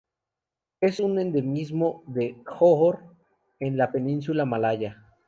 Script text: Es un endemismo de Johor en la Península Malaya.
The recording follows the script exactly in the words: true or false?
true